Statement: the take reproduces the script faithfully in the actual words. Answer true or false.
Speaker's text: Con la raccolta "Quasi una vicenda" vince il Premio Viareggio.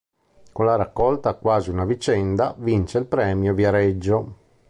true